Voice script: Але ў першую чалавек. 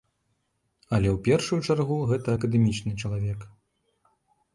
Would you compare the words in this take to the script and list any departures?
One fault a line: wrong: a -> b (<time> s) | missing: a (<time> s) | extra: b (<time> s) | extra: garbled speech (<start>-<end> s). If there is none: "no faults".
extra: чаргу гэта акадэмічны (1.7 s)